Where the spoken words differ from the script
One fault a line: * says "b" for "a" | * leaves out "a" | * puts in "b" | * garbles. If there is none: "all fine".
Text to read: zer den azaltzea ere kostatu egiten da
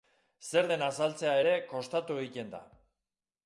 all fine